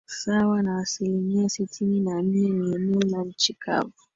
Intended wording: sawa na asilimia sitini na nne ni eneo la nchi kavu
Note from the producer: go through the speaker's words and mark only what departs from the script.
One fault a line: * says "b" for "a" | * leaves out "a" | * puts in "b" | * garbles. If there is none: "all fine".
all fine